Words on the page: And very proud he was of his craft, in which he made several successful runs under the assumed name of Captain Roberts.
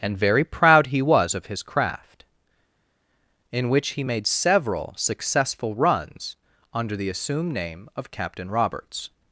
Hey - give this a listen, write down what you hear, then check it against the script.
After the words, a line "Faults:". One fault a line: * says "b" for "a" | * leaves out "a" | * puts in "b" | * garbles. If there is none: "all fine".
And very proud he was of his craft, in which he made several successful runs under the assumed name of Captain Roberts.
Faults:
all fine